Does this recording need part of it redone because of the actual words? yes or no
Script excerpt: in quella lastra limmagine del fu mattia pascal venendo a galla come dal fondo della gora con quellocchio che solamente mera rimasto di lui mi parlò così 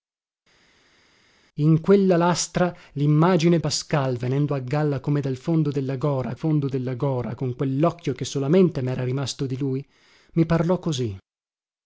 yes